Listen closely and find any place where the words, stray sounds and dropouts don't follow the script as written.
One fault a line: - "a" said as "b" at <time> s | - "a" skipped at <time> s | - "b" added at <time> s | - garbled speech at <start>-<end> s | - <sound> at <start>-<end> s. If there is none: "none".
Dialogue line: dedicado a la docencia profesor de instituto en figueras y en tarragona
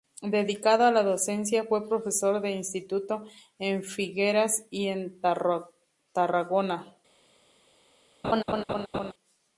- "fue" added at 1.6 s
- laugh at 8.2-9.1 s